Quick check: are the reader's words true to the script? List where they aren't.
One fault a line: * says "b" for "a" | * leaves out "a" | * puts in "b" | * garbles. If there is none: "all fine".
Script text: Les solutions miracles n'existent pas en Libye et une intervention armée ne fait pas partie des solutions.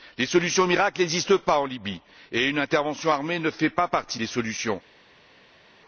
all fine